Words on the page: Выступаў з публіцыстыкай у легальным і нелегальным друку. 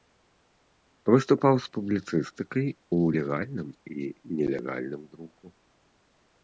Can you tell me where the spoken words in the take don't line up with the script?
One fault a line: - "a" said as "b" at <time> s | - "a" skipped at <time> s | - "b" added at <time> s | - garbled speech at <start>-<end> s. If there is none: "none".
none